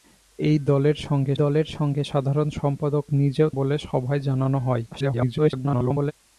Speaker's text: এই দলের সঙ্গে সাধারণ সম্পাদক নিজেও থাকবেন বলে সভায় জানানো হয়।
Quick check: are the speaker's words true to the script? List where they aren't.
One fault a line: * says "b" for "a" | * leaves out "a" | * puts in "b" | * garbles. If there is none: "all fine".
* puts in "দলের সঙ্গে"
* leaves out "থাকবেন"
* garbles